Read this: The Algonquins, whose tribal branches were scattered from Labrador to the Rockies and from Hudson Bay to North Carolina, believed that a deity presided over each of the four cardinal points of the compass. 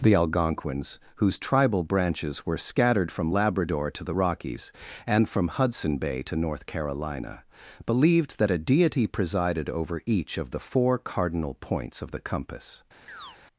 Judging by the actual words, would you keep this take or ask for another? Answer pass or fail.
pass